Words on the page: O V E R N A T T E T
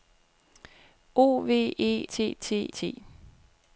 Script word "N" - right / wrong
wrong